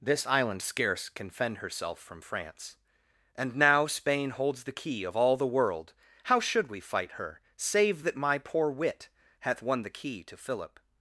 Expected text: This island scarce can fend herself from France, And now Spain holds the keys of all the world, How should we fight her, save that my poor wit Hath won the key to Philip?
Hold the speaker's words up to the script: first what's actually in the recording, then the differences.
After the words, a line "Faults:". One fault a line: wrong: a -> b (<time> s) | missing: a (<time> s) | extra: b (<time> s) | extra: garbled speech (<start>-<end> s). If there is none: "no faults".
This island scarce can fend herself from France, And now Spain holds the key of all the world, How should we fight her, save that my poor wit Hath won the key to Philip?
Faults:
wrong: keys -> key (4.7 s)